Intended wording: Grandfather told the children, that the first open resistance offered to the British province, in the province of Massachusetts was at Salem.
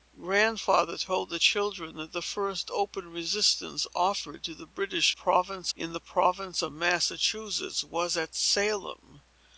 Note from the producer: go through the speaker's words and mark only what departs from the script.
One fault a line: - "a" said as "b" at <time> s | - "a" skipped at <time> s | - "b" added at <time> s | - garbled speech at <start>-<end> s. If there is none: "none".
none